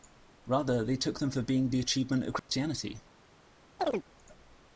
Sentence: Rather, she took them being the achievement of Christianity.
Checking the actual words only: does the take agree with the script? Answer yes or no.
no